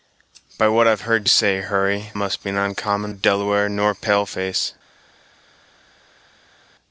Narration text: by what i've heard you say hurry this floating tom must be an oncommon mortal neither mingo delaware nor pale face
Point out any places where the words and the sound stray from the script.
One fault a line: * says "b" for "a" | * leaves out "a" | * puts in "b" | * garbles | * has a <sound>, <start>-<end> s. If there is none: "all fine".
* leaves out "you"
* leaves out "this floating tom"
* leaves out "mortal neither mingo"